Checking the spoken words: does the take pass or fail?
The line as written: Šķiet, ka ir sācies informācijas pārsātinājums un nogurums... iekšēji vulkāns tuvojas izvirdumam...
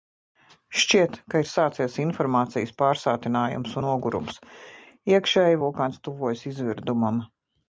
fail